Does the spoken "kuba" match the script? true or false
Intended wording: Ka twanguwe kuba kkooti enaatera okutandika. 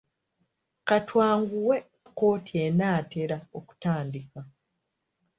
false